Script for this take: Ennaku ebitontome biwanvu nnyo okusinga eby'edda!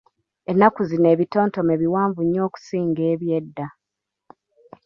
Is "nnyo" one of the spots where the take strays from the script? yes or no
no